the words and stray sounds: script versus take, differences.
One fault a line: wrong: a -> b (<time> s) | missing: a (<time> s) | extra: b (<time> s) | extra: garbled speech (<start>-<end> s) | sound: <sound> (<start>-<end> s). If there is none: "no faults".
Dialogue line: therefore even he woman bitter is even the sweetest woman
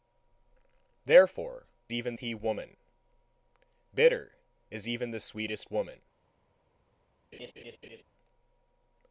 sound: laugh (7.3-8.0 s)